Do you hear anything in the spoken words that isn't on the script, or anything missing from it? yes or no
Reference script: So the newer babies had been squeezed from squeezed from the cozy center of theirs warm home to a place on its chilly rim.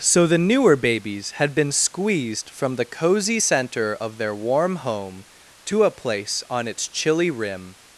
yes